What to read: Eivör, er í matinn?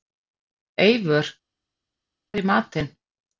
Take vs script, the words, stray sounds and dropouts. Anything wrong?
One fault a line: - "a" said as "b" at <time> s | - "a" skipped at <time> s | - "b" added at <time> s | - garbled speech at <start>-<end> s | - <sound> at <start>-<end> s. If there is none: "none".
none